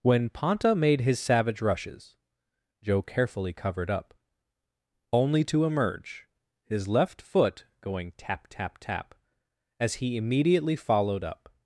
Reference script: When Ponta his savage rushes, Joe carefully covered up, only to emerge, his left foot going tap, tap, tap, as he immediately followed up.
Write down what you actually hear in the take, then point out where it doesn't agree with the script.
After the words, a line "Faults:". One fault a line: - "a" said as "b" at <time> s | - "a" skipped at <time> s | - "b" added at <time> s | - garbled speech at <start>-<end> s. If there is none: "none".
When Ponta made his savage rushes, Joe carefully covered up, only to emerge, his left foot going tap, tap, tap, as he immediately followed up.
Faults:
- "made" added at 0.7 s